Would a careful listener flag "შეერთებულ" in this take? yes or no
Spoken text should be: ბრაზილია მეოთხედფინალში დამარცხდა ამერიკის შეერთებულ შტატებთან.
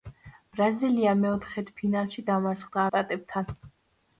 yes